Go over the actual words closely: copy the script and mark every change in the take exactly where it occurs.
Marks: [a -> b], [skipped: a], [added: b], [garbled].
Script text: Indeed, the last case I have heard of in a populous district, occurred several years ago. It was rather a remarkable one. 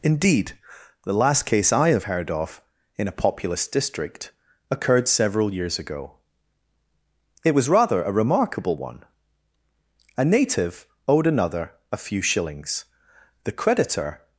Indeed, the last case I have heard of in a populous district, occurred several years ago. It was rather a remarkable one. [added: A native owed another a few shillings the creditor]